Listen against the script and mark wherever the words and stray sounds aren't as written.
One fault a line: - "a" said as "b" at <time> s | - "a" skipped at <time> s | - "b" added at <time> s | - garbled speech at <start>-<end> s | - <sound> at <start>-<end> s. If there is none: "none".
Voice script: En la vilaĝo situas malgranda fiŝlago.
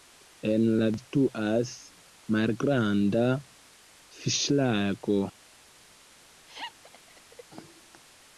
- "vilaĝo" skipped at 0.8 s
- laugh at 6.5-7.4 s